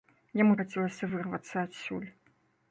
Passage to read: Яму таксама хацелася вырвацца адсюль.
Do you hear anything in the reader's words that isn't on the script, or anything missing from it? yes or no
yes